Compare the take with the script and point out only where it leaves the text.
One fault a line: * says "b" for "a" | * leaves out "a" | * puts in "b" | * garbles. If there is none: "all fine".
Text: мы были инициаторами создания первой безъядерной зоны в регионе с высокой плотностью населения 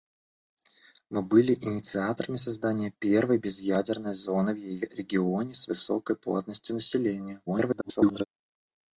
* garbles